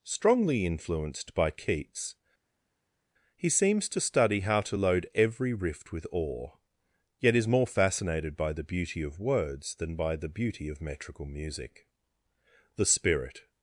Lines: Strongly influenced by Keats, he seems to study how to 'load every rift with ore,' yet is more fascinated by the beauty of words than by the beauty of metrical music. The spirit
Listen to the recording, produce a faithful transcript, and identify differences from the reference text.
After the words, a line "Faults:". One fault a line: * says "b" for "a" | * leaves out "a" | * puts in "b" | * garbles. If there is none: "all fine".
Strongly influenced by Keats, he seems to study how to 'load every rift with ore,' yet is more fascinated by the beauty of words than by the beauty of metrical music. The spirit
Faults:
all fine